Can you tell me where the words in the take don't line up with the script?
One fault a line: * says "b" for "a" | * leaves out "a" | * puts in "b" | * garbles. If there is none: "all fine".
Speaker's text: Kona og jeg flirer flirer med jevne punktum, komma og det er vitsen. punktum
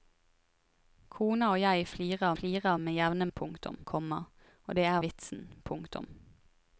all fine